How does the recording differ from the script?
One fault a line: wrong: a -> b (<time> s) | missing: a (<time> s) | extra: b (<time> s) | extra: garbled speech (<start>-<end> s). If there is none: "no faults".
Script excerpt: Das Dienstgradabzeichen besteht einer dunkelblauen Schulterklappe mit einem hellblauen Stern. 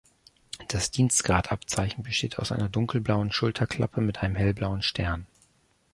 extra: aus (2.4 s)